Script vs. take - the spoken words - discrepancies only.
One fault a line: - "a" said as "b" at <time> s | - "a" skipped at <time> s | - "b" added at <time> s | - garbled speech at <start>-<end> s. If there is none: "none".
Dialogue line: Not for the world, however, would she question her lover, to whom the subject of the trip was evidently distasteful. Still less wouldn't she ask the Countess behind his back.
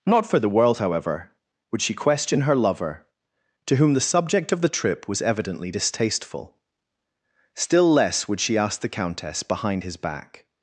- "wouldn't" said as "would" at 8.3 s